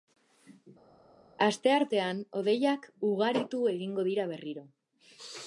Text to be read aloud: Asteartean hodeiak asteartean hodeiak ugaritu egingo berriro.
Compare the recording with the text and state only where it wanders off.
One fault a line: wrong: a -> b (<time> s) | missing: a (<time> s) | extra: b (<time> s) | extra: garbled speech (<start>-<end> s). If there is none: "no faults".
missing: asteartean hodeiak (2.9 s)
extra: dira (4.1 s)